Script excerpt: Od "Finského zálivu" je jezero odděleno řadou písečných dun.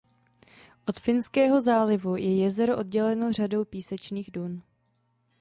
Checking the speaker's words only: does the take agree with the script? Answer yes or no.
yes